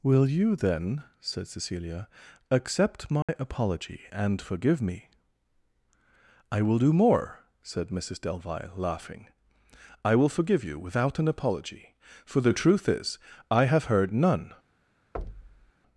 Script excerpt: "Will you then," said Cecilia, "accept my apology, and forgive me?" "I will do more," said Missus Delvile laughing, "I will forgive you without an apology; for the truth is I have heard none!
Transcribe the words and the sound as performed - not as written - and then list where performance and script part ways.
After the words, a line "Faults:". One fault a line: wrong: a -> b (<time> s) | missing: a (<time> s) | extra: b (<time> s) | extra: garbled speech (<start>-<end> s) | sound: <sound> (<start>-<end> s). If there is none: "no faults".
"Will you then," said Cecilia, "accept my apology, and forgive me?" "I will do more," said Missus Delvile laughing, "I will forgive you without an apology; for the truth is I have heard none!
Faults:
sound: dropout (3.2-3.3 s)
sound: thud (15.1-15.7 s)